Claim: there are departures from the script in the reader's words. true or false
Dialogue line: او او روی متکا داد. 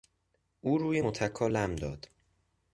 true